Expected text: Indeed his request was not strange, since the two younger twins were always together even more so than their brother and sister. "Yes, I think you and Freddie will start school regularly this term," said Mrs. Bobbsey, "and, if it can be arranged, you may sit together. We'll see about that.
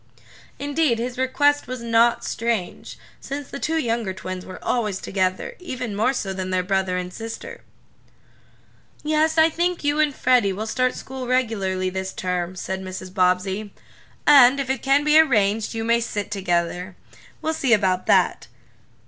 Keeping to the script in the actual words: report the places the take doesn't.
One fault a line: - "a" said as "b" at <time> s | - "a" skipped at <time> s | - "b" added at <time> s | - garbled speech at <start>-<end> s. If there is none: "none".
none